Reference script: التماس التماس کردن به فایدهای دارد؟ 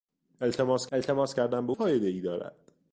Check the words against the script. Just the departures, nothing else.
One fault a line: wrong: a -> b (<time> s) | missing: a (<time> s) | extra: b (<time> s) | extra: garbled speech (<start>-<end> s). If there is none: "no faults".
no faults